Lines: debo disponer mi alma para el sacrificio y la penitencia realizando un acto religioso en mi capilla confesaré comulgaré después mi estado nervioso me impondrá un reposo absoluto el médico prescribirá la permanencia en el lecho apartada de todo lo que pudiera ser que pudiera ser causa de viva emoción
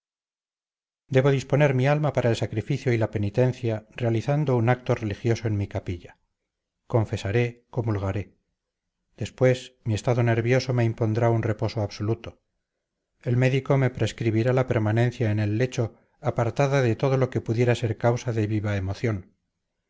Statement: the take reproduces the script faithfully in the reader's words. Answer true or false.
false